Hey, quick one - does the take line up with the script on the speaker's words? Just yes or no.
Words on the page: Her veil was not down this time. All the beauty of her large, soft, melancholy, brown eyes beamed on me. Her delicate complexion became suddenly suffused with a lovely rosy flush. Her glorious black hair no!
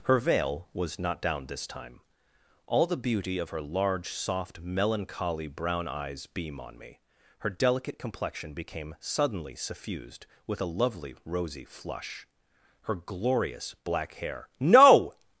no